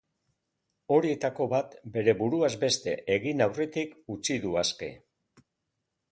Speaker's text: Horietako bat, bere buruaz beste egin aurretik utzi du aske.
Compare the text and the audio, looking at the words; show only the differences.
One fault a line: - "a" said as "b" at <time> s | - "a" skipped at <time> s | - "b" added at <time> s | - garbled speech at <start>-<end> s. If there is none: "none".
none